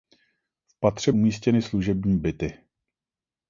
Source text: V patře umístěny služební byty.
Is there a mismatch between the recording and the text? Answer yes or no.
no